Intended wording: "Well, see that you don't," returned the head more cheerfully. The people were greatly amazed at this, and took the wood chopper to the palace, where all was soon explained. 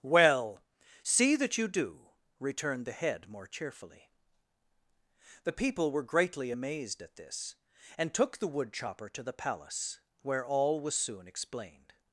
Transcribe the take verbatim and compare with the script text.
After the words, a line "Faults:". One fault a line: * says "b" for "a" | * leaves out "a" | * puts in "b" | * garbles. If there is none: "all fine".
"Well, see that you do," returned the head more cheerfully. The people were greatly amazed at this, and took the wood chopper to the palace, where all was soon explained.
Faults:
* says "do" for "don't"